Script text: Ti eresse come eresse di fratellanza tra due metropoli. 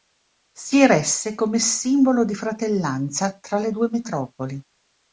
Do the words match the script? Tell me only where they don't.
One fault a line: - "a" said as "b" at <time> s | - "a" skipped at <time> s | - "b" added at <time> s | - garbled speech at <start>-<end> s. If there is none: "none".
- "Ti" said as "Si" at 0.5 s
- "eresse" said as "simbolo" at 1.6 s
- "le" added at 3.6 s